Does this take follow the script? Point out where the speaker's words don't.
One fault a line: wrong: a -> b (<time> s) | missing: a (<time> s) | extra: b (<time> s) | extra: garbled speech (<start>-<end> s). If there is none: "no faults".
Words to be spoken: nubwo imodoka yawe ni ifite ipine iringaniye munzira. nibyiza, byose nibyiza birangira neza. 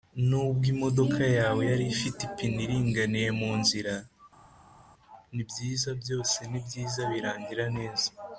wrong: ni -> yari (1.7 s)